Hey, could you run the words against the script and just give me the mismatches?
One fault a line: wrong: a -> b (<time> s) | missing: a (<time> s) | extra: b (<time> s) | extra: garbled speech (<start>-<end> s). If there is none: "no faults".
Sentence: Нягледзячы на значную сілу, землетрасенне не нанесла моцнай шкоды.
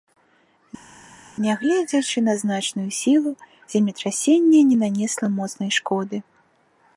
no faults